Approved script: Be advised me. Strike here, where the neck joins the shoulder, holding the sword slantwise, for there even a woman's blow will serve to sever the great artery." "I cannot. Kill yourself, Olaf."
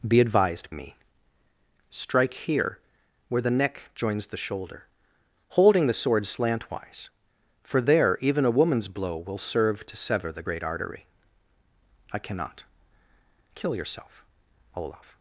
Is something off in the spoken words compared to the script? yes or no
no